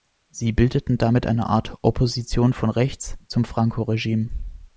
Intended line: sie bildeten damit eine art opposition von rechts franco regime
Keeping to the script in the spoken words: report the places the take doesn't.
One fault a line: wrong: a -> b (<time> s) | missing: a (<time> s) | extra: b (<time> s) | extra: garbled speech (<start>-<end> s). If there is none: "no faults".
extra: zum (3.3 s)